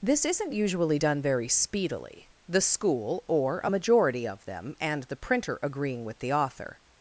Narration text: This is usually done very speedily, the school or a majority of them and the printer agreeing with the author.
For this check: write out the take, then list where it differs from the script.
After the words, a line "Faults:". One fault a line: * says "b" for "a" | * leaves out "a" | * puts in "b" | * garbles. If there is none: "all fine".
This isn't usually done very speedily, the school or a majority of them and the printer agreeing with the author.
Faults:
* says "isn't" for "is"